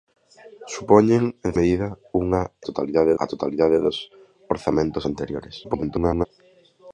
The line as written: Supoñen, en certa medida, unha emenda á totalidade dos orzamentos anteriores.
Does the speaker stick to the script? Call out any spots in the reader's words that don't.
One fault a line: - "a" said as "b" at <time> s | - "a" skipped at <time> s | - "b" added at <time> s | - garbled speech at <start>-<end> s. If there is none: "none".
- "certa" skipped at 1.5 s
- "emenda" said as "totalidade" at 2.7 s
- garbled speech at 5.6-6.3 s